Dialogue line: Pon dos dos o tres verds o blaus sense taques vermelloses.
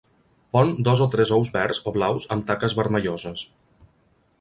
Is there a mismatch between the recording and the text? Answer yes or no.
yes